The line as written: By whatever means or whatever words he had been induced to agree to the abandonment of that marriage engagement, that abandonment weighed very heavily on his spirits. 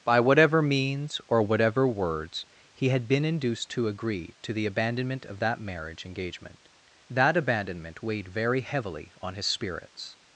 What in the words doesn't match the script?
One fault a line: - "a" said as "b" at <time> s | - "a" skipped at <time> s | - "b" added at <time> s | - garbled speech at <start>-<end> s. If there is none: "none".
none